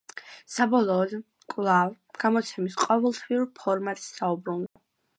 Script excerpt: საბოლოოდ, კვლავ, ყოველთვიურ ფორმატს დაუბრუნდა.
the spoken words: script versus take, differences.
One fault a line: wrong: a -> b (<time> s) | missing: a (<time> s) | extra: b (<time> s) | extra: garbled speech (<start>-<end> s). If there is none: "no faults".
extra: გამოცემის (2.2 s)